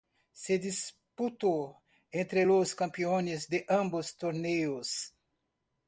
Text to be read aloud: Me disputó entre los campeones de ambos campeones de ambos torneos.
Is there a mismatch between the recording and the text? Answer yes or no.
yes